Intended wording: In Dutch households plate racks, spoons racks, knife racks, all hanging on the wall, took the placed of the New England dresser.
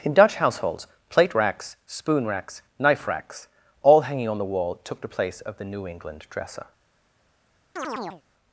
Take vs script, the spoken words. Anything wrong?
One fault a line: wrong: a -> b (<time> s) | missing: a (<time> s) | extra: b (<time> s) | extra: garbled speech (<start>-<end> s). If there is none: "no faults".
wrong: spoons -> spoon (1.9 s)
wrong: placed -> place (5.1 s)